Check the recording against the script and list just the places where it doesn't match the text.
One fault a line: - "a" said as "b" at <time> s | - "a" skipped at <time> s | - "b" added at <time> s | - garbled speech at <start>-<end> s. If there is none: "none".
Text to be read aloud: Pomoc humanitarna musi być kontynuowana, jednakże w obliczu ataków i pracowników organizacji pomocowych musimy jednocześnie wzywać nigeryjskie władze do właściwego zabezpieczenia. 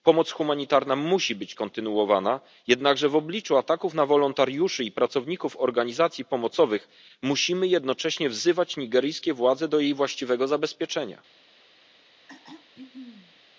- "na wolontariuszy" added at 3.9 s
- "jej" added at 9.8 s